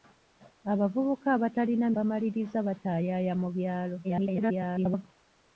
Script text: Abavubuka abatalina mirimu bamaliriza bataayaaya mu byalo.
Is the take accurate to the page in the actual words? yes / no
no